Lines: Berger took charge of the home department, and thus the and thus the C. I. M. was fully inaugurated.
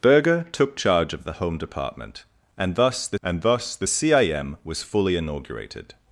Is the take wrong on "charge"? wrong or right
right